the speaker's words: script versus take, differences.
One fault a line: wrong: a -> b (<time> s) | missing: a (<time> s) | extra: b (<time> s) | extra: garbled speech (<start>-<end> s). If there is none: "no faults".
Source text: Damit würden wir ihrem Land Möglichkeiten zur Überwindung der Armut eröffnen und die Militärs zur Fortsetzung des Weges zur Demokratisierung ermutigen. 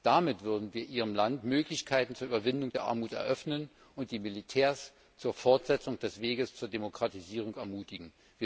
no faults